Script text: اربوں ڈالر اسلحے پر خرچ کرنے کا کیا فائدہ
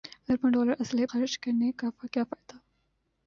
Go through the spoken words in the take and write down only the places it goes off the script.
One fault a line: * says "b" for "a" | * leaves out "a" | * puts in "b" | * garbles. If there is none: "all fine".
* leaves out "پر"